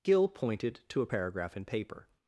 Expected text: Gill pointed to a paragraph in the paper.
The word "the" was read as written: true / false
false